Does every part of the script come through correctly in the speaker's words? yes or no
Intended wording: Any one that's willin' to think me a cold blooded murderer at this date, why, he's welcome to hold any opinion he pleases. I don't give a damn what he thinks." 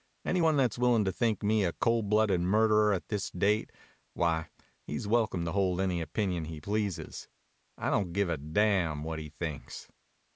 yes